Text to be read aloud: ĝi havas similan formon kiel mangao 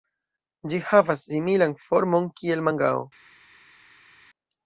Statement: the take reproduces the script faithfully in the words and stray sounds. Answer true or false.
true